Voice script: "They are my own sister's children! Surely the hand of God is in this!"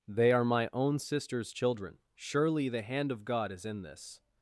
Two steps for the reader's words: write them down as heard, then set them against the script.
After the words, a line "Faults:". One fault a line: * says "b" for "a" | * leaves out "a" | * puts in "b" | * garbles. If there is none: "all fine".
"They are my own sister's children! Surely the hand of God is in this!"
Faults:
all fine